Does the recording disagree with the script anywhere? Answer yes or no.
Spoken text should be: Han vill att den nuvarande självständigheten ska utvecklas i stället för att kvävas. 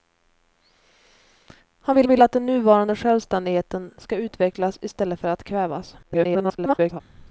yes